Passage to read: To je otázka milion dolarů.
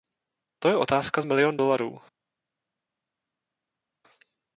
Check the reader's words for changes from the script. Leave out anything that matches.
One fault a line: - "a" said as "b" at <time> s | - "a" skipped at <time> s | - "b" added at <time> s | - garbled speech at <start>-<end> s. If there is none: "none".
none